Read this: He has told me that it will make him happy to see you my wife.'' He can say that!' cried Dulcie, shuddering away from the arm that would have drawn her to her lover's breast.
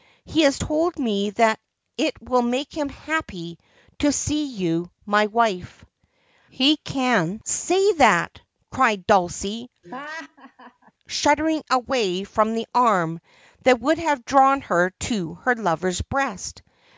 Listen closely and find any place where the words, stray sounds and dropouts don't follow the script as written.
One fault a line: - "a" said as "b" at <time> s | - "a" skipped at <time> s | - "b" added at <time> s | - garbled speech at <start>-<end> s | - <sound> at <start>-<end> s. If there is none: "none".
- laugh at 9.8-10.9 s